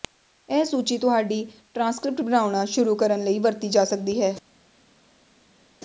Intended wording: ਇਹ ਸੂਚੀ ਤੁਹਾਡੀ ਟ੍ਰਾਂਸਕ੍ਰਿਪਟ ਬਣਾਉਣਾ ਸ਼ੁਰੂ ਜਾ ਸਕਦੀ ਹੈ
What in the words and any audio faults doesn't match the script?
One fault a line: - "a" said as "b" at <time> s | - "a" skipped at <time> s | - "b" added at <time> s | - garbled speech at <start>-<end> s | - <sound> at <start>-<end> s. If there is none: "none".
- "ਕਰਨ ਲਈ ਵਰਤੀ" added at 2.9 s